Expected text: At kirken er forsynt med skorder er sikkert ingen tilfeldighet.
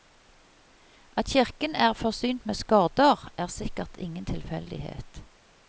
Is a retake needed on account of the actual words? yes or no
no